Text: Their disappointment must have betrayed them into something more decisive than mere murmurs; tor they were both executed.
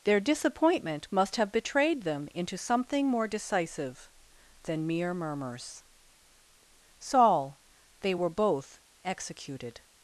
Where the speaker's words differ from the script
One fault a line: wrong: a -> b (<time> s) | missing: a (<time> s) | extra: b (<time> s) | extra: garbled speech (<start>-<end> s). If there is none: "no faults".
wrong: tor -> saul (7.0 s)